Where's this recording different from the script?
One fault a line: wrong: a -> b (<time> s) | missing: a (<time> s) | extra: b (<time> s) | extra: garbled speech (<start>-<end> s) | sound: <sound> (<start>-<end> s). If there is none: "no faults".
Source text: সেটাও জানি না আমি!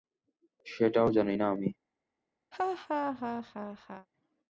sound: laugh (2.5-4.1 s)